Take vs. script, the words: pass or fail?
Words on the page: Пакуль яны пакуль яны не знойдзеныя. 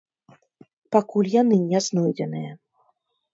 fail